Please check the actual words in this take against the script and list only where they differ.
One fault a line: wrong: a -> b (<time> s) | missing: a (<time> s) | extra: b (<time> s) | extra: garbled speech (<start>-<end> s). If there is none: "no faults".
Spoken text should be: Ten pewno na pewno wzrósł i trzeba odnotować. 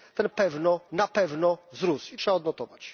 no faults